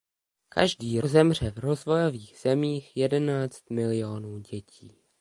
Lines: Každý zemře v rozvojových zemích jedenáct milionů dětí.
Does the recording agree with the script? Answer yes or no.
yes